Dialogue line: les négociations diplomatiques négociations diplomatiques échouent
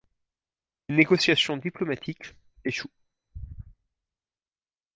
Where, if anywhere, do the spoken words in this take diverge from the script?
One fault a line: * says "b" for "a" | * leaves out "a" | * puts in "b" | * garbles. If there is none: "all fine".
* leaves out "négociations diplomatiques"